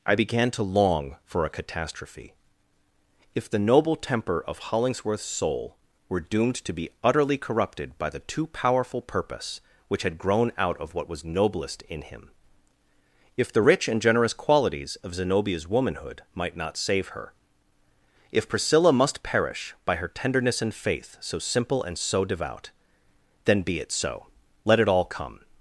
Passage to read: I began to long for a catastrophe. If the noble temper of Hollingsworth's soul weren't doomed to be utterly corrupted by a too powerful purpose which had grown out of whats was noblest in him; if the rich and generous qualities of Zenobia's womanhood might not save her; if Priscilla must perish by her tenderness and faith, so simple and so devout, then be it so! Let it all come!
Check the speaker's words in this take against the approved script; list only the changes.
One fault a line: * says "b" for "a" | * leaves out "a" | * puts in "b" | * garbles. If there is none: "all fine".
* says "were" for "weren't"
* says "the" for "a"
* says "what" for "whats"